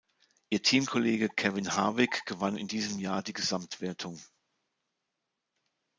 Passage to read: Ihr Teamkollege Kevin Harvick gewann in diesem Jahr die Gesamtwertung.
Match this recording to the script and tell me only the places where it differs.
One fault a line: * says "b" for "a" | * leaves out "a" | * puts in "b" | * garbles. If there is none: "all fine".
all fine